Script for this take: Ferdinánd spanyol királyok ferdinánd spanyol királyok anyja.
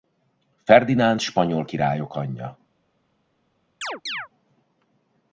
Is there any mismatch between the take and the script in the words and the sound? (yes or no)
yes